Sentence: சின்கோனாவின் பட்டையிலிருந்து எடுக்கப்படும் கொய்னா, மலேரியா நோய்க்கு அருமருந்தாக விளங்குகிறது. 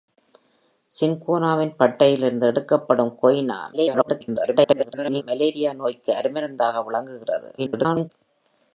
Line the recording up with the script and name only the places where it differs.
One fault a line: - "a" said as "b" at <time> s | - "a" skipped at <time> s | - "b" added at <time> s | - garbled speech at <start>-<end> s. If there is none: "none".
- garbled speech at 3.7-5.2 s
- garbled speech at 7.6-8.1 s